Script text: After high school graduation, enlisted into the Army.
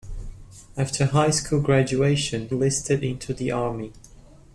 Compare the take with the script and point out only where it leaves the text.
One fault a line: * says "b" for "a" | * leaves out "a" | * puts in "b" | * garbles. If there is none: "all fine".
all fine